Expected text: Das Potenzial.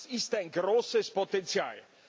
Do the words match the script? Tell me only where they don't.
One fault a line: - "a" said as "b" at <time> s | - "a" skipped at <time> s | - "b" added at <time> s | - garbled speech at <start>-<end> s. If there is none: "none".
- "ist ein großes" added at 0.1 s